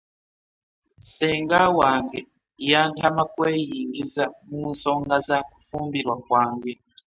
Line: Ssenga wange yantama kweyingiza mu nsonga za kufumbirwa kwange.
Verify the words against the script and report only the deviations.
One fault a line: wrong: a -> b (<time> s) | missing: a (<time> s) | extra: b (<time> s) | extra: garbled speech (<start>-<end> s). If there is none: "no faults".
no faults